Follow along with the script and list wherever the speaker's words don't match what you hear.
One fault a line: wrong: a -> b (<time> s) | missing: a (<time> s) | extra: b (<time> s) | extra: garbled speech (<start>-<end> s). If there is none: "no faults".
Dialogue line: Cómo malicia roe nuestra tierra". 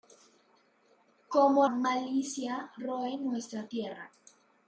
no faults